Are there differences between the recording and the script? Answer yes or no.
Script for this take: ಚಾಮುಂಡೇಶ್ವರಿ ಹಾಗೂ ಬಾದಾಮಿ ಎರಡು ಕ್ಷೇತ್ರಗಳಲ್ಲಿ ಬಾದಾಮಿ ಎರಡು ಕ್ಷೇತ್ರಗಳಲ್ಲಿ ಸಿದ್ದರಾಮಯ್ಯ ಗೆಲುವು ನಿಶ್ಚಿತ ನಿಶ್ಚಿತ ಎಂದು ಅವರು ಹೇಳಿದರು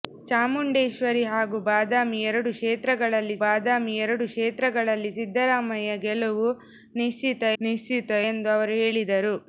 no